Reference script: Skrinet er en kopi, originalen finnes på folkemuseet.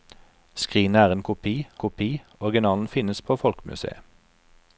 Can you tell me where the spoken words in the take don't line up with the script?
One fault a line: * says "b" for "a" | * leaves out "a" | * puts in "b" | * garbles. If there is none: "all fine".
* puts in "kopi"